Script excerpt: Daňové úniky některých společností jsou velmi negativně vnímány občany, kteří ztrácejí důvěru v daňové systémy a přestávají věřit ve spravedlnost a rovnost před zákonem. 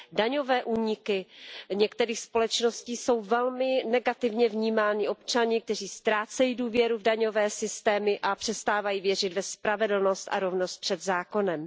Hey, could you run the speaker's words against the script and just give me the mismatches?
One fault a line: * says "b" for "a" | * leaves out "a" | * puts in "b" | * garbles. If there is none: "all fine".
all fine